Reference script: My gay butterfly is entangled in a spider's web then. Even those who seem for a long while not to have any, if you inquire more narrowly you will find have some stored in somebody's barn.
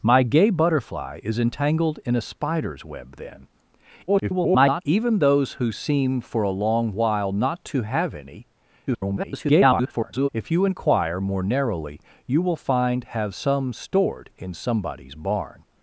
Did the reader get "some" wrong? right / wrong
right